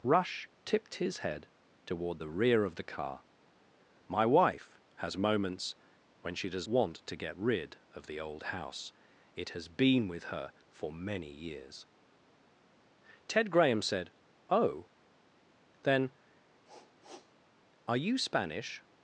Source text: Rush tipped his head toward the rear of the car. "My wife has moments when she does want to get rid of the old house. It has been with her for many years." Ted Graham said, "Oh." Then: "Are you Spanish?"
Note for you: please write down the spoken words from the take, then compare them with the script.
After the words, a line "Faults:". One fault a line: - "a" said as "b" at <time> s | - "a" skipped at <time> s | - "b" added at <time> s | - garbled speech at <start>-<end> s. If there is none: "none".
Rush tipped his head toward the rear of the car. "My wife has moments when she does want to get rid of the old house. It has been with her for many years." Ted Graham said, "Oh." Then: "Are you Spanish?"
Faults:
none